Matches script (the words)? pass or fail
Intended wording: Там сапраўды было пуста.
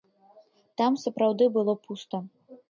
pass